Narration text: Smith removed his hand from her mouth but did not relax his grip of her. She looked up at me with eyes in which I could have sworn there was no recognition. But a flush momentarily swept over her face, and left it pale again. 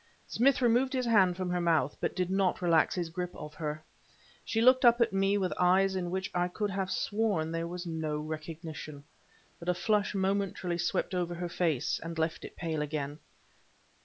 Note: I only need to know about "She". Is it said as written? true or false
true